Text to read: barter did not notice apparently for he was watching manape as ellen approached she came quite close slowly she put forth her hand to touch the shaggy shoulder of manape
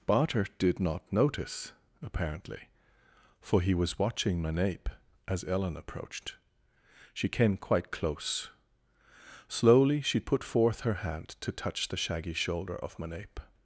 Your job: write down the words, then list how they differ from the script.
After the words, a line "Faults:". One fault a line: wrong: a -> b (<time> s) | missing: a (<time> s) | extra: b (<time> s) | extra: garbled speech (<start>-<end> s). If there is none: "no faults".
barter did not notice apparently for he was watching manape as ellen approached she came quite close slowly she put forth her hand to touch the shaggy shoulder of manape
Faults:
no faults